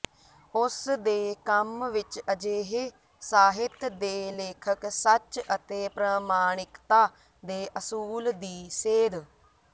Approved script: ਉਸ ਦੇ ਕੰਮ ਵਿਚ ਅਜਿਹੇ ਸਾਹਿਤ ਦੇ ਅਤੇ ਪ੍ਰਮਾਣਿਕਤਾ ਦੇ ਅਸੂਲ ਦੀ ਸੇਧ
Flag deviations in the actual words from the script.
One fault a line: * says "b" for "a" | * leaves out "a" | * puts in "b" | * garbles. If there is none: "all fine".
* puts in "ਲੇਖਕ ਸੱਚ"